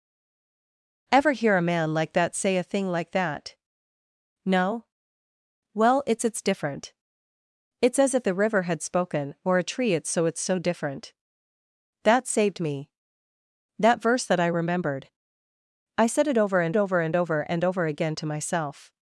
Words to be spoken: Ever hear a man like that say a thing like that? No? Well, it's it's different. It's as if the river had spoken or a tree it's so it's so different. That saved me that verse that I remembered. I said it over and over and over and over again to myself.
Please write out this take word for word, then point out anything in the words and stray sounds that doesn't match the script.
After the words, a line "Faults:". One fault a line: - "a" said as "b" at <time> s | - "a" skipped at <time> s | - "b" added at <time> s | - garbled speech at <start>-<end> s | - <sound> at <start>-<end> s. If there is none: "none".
Ever hear a man like that say a thing like that? No? Well, it's it's different. It's as if the river had spoken or a tree it's so it's so different. That saved me that verse that I remembered. I said it over and over and over and over again to myself.
Faults:
none